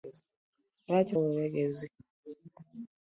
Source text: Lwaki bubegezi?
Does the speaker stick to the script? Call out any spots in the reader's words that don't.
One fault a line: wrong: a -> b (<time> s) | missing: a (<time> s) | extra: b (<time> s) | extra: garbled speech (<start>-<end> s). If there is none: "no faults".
no faults